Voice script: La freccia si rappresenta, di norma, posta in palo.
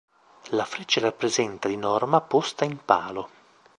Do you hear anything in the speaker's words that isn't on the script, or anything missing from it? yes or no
yes